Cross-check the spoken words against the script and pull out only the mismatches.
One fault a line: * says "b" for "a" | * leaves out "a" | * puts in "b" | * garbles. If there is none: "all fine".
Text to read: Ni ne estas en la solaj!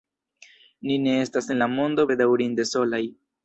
* puts in "mondo bedaŭrinde"